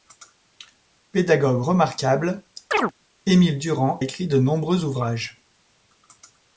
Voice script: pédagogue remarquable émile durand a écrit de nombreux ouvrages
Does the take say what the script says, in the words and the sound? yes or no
no